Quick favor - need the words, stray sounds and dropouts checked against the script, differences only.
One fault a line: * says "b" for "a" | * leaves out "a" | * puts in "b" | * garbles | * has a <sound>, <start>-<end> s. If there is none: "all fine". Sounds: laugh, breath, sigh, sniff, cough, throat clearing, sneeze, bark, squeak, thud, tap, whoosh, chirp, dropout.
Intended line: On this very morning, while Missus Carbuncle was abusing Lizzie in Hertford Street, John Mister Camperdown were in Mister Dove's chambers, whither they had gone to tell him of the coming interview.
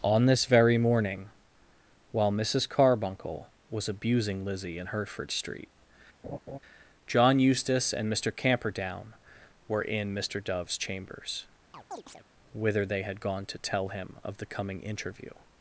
* has a laugh, 6.2-6.6 s
* puts in "Eustace and"
* has a chirp, 11.7-12.2 s